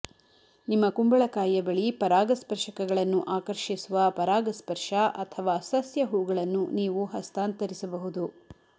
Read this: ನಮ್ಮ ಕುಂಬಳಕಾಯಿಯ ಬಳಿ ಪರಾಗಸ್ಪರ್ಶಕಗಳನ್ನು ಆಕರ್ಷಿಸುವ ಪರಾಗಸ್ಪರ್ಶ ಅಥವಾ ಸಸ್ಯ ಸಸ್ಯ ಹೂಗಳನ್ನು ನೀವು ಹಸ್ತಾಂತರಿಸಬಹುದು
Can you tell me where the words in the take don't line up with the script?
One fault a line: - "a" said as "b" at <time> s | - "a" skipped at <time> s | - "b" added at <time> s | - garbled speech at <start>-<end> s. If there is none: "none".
- "ನಮ್ಮ" said as "ನಿಮ್ಮ" at 0.7 s
- "ಸಸ್ಯ" skipped at 6.0 s